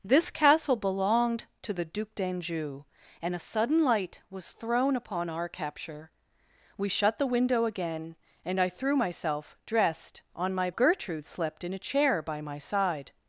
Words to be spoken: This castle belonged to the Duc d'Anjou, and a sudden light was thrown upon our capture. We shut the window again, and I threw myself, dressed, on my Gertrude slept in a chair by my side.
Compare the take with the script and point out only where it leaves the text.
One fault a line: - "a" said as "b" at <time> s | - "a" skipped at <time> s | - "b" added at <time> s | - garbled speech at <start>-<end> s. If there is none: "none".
none